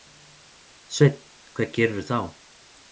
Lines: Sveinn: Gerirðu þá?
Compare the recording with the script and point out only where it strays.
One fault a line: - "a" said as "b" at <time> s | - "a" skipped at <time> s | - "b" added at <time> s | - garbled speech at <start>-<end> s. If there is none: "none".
- "Hvað" added at 1.5 s